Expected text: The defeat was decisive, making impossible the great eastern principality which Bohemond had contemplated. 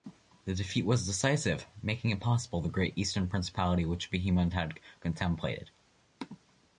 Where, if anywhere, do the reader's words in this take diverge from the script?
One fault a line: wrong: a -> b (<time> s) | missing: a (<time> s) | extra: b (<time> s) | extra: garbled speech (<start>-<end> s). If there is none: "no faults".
no faults